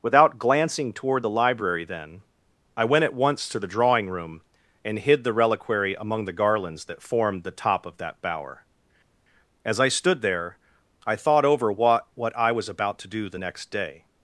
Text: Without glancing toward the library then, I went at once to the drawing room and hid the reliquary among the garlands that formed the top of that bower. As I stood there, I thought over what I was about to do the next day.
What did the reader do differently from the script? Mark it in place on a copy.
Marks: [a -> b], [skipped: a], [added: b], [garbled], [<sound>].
Without glancing toward the library then, I went at once to the drawing room and hid the reliquary among the garlands that formed the top of that bower. As I stood there, I thought over what [added: what] I was about to do the next day.